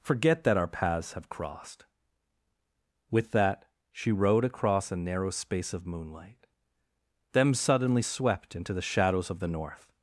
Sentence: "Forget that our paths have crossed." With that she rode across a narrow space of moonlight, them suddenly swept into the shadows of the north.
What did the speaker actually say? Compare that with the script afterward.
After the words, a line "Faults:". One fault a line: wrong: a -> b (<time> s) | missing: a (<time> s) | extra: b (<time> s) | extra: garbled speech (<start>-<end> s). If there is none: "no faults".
"Forget that our paths have crossed." With that she rode across a narrow space of moonlight, them suddenly swept into the shadows of the north.
Faults:
no faults